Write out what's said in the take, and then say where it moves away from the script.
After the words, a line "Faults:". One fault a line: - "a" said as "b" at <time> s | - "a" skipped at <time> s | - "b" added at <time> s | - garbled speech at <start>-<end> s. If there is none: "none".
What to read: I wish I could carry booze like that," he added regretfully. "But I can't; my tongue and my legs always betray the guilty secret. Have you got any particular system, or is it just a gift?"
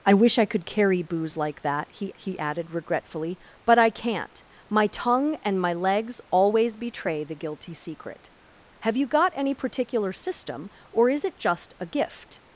I wish I could carry booze like that," he he added regretfully. "But I can't; my tongue and my legs always betray the guilty secret. Have you got any particular system, or is it just a gift?"
Faults:
- "he" added at 2.2 s